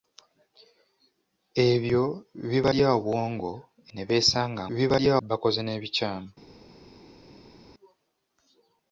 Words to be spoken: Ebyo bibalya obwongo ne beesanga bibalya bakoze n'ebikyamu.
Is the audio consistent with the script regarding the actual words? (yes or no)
yes